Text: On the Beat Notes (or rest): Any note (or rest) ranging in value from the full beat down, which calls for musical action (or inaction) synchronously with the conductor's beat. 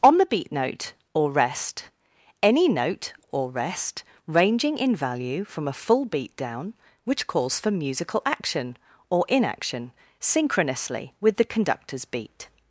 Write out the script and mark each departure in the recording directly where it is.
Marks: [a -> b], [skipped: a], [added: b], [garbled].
On the Beat [Notes -> Note] (or rest): Any note (or rest) ranging in value from [the -> a] full beat down, which calls for musical action (or inaction) synchronously with the conductor's beat.